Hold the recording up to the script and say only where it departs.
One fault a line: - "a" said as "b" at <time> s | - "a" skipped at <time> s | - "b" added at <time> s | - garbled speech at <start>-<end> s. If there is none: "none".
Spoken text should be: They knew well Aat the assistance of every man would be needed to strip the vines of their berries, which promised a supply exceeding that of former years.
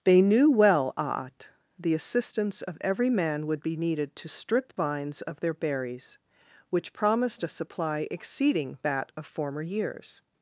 - "the" skipped at 4.8 s